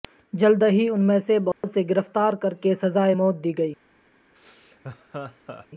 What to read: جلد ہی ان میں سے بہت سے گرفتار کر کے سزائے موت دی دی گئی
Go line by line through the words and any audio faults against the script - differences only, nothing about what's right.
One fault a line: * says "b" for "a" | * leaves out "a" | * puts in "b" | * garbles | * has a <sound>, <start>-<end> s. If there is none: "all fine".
* has a dropout, 1.5-1.6 s
* leaves out "دی"
* has a laugh, 4.4-5.7 s